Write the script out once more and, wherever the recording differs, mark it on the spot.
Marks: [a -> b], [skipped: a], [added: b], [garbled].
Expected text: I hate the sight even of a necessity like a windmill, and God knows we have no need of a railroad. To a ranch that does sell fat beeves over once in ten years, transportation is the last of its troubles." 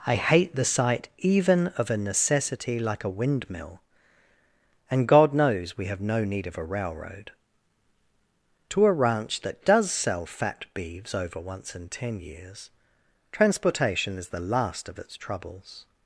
I hate the sight even of a necessity like a windmill, and God knows we have no need of a railroad. To a ranch that does sell fat beeves over once in ten years, transportation is the last of its troubles."